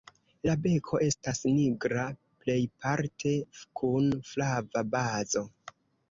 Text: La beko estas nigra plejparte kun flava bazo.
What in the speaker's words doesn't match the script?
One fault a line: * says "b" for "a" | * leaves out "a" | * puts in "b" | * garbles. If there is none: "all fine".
all fine